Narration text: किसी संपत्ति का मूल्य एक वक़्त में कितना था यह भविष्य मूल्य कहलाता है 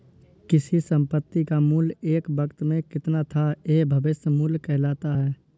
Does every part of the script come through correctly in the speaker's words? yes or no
yes